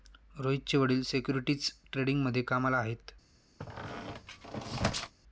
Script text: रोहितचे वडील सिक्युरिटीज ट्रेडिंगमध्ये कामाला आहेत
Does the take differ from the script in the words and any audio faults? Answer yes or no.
yes